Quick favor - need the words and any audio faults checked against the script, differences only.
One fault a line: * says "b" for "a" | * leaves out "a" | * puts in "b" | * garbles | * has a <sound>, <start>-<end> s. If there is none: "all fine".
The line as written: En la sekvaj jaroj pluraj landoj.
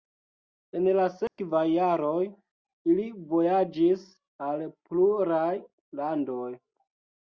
* has a dropout, 1.3-1.4 s
* puts in "ili vojaĝis al"